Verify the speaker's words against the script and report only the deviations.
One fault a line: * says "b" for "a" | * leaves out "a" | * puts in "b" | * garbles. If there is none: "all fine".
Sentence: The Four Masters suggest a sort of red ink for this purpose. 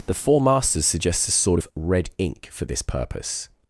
* says "suggests" for "suggest"